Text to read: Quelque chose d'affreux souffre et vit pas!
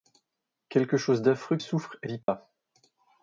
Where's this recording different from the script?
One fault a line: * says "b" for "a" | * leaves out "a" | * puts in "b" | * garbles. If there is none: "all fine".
all fine